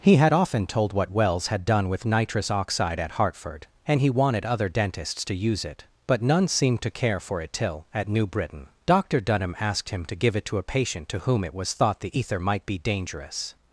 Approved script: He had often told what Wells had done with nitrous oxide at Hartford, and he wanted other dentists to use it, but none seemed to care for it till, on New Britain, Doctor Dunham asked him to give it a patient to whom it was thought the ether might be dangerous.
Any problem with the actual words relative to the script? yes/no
yes